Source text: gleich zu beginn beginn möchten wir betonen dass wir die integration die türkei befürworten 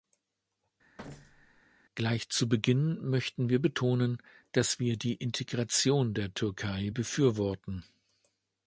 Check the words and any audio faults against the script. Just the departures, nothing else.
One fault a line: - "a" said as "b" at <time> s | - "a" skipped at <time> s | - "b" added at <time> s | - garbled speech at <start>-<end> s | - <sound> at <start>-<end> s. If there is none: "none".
- thud at 1.0-1.6 s
- "beginn" skipped at 3.0 s
- "die" said as "der" at 6.2 s